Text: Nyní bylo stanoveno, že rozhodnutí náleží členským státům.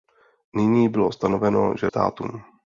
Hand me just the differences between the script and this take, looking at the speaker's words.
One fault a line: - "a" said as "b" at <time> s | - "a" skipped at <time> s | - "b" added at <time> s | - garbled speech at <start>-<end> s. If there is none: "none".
- "rozhodnutí náleží členským" skipped at 1.9 s